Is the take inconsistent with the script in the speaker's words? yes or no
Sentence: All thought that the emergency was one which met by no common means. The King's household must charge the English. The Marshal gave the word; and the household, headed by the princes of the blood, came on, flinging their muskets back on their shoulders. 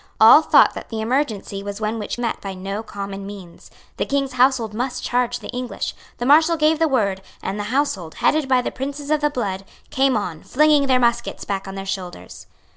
no